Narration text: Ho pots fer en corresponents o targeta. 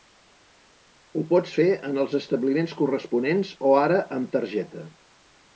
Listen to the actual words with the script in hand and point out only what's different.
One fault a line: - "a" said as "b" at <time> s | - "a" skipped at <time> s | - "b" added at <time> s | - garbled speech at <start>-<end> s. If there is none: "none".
- "els establiments" added at 2.1 s
- "ara amb" added at 3.8 s